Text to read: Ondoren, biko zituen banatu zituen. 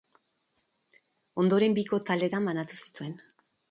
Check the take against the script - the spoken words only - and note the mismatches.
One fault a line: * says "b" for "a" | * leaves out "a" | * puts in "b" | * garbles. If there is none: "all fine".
* says "taldetan" for "zituen"